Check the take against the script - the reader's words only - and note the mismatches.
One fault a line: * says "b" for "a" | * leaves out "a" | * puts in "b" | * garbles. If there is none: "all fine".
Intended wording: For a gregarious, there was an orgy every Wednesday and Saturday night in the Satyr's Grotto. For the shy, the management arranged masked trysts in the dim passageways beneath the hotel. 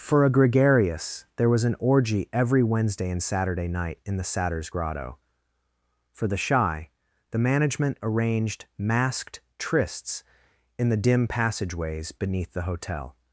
all fine